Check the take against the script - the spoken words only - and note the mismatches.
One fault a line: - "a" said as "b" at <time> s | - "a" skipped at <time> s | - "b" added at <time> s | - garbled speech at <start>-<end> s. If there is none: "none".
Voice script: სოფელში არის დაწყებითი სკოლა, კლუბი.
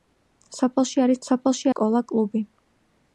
- "დაწყებითი" said as "სოფელში" at 1.3 s